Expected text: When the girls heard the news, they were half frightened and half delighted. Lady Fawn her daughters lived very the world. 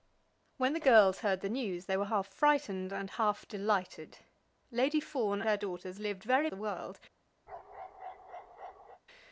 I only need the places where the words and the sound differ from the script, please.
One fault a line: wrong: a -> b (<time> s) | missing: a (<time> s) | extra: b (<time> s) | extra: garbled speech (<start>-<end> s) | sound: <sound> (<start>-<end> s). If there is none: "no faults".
sound: bark (7.5-9.0 s)